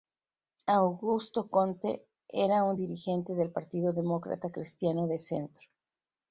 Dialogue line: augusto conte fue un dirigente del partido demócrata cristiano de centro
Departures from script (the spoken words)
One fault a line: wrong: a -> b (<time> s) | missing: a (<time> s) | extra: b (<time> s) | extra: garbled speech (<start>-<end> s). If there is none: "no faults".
wrong: fue -> era (2.3 s)